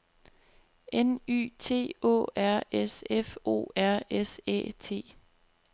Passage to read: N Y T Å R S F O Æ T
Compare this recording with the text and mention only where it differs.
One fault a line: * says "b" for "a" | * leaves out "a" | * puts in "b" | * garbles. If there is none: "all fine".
* puts in "R S"